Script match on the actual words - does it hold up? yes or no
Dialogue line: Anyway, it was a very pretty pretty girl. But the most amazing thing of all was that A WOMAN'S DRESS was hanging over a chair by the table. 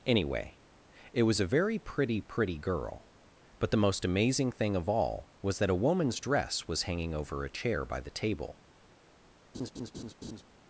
yes